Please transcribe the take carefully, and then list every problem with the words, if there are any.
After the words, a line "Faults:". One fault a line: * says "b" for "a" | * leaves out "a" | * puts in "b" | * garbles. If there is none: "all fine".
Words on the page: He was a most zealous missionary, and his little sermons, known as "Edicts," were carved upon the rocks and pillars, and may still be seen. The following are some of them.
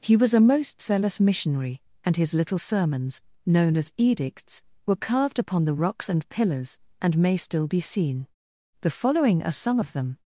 He was a most zealous missionary, and his little sermons, known as "Edicts," were carved upon the rocks and pillars, and may still be seen. The following are some of them.
Faults:
all fine